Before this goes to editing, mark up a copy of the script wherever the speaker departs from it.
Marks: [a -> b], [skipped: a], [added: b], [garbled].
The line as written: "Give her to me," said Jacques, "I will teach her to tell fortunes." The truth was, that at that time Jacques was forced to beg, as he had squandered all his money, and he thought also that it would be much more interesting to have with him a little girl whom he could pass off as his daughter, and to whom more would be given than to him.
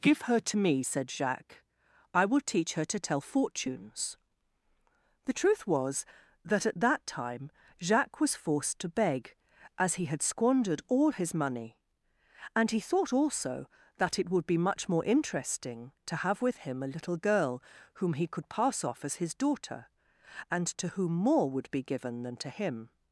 "Give her to me," said Jacques, "I will teach her to tell fortunes." The truth was, that at that time Jacques was forced to beg, as he had squandered all his money, and he thought also that it would be much more interesting to have with him a little girl whom he could pass off as his daughter, and to whom more would be given than to him.